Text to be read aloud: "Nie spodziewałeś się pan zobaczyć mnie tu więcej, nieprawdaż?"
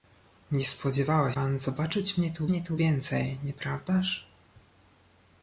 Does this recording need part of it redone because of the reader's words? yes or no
yes